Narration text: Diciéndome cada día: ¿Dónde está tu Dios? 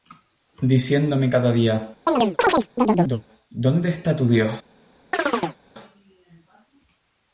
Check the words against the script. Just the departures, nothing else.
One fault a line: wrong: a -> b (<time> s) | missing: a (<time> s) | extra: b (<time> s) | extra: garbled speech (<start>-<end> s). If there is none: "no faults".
no faults